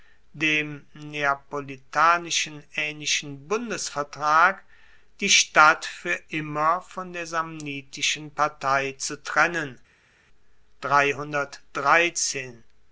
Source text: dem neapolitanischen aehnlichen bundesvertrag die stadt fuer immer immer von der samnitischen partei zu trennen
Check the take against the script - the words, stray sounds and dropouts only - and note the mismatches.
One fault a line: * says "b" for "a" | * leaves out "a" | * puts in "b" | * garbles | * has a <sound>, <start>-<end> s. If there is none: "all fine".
* leaves out "immer"